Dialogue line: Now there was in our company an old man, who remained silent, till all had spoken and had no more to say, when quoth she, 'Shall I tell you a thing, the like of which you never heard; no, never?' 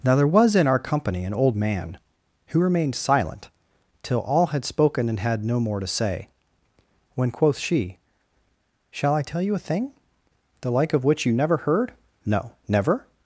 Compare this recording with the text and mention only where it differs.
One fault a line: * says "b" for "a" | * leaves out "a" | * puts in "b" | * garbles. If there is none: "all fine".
all fine